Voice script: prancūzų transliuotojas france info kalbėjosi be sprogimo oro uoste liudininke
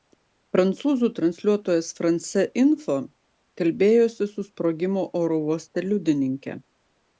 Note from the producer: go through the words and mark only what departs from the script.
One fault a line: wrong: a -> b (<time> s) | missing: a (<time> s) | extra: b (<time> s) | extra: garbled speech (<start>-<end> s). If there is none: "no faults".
wrong: be -> su (4.3 s)